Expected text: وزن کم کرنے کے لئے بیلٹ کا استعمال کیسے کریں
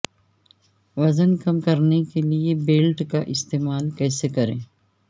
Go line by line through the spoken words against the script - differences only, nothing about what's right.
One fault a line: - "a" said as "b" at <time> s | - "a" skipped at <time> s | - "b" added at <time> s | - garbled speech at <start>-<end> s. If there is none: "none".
none